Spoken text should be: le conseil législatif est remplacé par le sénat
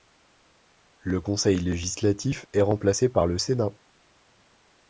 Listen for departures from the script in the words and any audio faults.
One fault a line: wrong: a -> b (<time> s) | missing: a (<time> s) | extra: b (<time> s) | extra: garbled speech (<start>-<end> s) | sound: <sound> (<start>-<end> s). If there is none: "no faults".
no faults